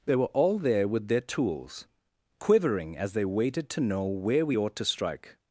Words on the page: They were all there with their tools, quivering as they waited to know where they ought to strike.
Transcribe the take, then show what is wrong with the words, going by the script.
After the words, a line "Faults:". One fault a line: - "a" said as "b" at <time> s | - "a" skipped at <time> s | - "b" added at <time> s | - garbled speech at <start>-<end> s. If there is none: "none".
They were all there with their tools, quivering as they waited to know where we ought to strike.
Faults:
- "they" said as "we" at 4.5 s